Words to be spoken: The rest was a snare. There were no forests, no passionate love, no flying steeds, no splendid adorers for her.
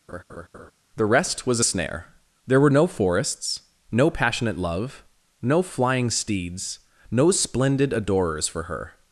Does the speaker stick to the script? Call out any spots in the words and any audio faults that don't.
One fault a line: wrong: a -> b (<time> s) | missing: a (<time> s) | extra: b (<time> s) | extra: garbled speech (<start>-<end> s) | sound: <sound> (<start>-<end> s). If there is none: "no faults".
sound: laugh (0.1-0.7 s)